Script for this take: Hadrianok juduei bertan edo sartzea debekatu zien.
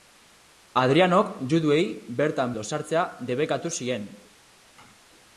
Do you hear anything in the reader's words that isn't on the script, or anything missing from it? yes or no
no